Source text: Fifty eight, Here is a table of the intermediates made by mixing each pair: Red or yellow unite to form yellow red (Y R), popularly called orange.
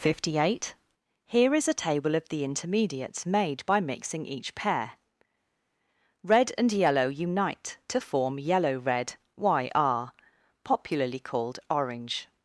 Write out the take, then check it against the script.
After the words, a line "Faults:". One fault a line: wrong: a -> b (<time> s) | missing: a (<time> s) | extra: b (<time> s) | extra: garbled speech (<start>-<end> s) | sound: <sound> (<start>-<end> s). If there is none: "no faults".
Fifty eight, Here is a table of the intermediates made by mixing each pair: Red and yellow unite to form yellow red (Y R), popularly called orange.
Faults:
wrong: or -> and (6.6 s)